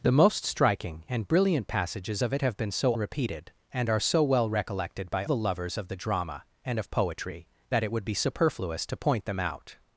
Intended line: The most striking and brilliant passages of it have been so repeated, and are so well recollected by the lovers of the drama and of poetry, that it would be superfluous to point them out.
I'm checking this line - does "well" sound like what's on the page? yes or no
yes